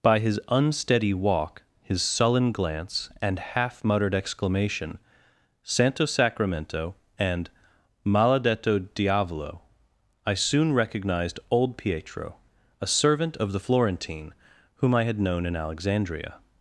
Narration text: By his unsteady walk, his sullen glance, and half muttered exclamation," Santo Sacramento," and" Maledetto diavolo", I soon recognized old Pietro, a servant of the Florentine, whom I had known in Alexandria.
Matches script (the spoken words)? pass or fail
pass